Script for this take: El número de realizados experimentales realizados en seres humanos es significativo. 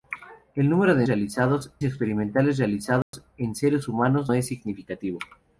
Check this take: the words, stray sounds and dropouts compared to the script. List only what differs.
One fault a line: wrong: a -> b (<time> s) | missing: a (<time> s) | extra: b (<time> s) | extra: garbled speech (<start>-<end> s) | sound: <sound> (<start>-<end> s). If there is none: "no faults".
sound: dropout (3.0-3.1 s)